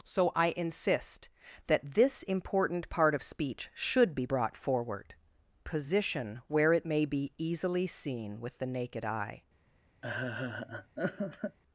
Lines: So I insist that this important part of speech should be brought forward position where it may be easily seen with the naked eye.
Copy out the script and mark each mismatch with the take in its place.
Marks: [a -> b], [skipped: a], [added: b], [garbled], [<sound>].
So I insist that this important part of speech should be brought forward position where it may be easily seen with the naked eye. [laugh]